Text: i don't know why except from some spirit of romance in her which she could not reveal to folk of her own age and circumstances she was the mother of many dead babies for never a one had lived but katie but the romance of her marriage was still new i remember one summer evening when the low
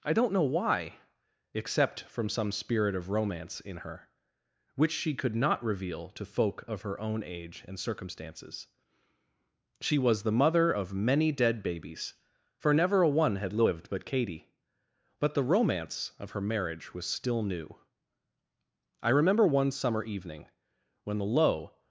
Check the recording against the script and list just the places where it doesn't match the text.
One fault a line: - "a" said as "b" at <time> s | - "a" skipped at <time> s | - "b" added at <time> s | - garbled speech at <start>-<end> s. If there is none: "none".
none